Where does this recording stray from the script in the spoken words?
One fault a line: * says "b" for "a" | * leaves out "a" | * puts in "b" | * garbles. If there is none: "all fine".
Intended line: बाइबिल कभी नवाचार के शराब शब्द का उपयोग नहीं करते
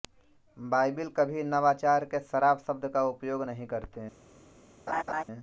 all fine